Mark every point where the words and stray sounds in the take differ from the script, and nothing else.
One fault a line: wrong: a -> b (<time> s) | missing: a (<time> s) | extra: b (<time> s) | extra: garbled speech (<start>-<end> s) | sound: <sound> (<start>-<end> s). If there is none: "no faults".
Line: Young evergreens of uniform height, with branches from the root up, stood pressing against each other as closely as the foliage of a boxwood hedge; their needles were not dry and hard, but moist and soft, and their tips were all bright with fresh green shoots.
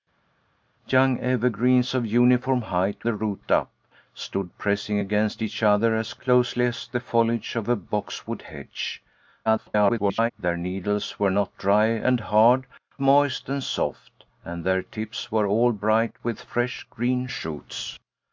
missing: with branches from (3.0 s)
extra: garbled speech (9.5-10.3 s)
missing: but (12.7 s)